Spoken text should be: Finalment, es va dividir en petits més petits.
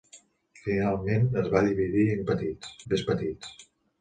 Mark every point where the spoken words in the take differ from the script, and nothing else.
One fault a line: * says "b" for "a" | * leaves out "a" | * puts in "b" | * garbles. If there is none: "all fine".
all fine